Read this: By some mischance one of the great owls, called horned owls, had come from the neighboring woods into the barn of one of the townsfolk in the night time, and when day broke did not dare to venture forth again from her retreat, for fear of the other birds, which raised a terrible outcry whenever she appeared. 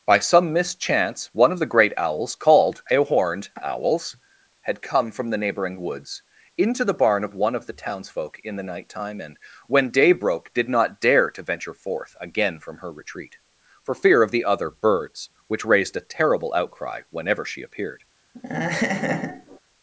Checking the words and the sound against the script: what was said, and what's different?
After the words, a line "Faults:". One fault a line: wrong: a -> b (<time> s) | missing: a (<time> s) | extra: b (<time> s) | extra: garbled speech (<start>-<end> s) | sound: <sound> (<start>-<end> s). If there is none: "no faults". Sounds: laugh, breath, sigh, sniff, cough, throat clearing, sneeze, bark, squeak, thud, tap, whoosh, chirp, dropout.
By some mischance one of the great owls, called a horned owls, had come from the neighboring woods into the barn of one of the townsfolk in the night time, and when day broke did not dare to venture forth again from her retreat, for fear of the other birds, which raised a terrible outcry whenever she appeared.
Faults:
extra: a (2.9 s)
sound: laugh (18.3-19.6 s)